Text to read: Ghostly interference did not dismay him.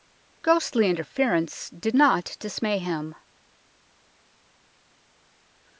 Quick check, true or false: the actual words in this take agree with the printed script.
true